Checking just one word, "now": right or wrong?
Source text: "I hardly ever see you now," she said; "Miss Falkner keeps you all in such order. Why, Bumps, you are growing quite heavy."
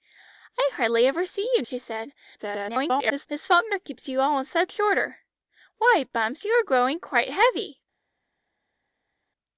wrong